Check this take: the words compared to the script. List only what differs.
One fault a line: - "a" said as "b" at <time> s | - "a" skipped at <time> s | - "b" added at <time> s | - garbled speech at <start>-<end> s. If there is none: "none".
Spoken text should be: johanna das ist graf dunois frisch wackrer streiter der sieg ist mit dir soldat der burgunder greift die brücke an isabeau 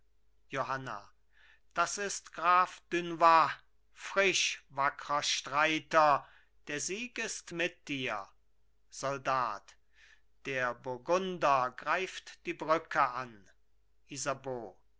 none